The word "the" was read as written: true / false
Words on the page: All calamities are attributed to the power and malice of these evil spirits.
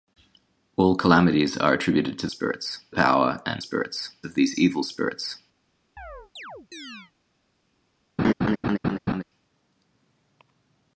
false